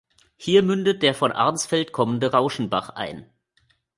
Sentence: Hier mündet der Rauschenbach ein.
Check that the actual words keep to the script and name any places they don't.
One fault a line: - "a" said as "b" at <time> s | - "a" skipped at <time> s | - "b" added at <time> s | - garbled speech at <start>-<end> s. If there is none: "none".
- "von Arnsfeld kommende" added at 1.1 s